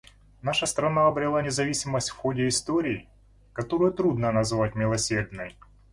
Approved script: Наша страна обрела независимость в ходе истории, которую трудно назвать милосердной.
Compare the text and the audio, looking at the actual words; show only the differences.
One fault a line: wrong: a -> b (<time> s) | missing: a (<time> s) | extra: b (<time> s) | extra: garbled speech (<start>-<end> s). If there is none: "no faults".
no faults